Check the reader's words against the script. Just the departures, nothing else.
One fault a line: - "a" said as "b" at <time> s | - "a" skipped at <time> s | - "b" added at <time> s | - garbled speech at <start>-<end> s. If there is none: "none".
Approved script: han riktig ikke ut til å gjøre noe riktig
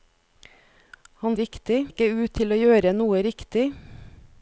none